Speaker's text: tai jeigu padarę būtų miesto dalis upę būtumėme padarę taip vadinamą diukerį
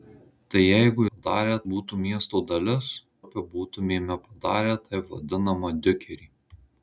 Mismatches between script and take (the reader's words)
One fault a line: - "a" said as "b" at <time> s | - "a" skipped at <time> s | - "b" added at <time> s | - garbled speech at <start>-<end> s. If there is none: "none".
none